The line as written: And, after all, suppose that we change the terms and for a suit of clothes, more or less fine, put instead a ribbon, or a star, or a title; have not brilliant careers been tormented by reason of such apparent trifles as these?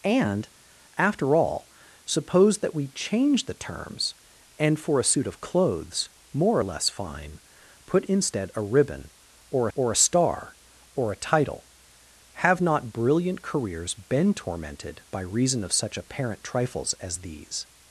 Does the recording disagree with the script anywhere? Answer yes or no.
yes